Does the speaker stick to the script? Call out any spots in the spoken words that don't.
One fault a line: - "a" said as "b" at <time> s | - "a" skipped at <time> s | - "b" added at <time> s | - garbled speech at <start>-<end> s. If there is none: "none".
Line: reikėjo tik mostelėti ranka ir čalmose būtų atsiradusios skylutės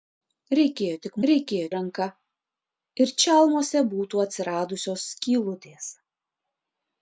- "mostelėti" said as "reikėjo" at 1.3 s